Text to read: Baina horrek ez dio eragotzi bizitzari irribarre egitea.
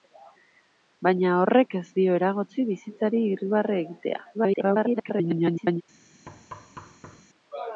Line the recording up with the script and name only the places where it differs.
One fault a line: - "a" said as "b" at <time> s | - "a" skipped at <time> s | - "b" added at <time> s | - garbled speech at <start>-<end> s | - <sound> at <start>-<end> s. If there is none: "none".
- garbled speech at 4.3-5.8 s
- thud at 6.3-7.2 s